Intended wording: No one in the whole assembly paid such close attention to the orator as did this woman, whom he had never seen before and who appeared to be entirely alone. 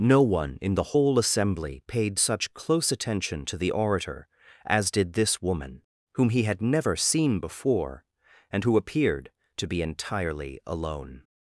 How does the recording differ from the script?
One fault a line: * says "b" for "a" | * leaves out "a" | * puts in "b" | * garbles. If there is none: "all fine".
all fine